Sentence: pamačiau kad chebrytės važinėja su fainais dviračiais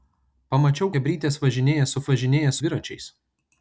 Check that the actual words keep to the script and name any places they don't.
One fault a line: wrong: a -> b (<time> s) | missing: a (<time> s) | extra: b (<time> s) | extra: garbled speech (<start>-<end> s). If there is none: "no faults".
missing: kad (0.9 s)
wrong: fainais -> važinėja (2.1 s)